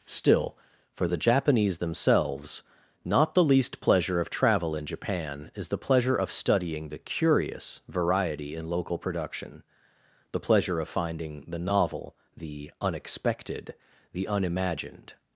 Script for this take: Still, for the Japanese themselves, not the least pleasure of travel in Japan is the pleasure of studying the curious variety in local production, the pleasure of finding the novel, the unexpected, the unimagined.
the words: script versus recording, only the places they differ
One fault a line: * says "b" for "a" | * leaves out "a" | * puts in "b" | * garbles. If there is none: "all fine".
all fine